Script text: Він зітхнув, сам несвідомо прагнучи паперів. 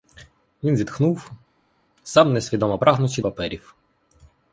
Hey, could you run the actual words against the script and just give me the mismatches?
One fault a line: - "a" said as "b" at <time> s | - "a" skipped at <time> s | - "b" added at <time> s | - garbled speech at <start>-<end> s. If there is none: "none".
none